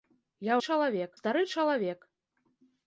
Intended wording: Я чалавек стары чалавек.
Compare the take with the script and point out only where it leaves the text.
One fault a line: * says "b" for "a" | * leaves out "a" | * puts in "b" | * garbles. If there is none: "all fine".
all fine